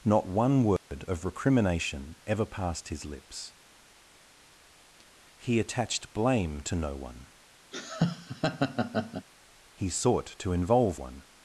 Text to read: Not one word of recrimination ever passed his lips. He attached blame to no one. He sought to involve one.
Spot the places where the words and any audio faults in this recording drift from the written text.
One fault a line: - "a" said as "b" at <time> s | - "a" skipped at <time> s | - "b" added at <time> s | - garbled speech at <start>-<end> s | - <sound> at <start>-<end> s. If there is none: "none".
- dropout at 0.8-0.9 s
- laugh at 7.7-9.3 s